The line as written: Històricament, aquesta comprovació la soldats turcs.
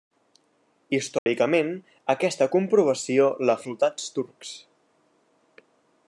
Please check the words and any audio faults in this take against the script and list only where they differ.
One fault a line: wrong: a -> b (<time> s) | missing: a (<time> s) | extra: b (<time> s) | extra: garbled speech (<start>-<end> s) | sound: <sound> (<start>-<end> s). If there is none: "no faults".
sound: dropout (1.2-1.3 s)